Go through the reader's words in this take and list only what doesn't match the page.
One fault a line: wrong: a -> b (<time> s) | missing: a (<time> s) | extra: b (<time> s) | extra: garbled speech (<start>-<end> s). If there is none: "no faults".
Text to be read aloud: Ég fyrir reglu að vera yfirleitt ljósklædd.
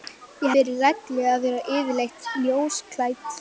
no faults